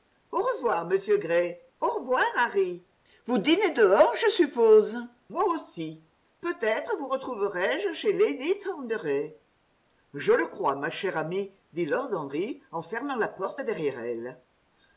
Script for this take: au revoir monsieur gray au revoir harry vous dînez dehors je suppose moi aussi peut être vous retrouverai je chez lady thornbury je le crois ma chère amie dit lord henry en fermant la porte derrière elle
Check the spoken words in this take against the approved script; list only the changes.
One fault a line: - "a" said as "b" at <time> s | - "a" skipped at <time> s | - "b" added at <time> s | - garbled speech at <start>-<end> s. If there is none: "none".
none